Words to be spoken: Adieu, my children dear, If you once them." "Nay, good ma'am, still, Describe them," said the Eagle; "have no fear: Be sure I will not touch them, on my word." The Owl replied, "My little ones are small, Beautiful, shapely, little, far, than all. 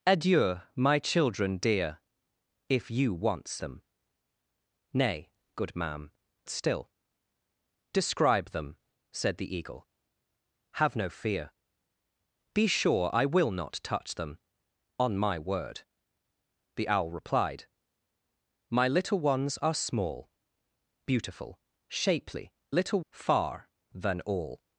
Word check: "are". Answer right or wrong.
right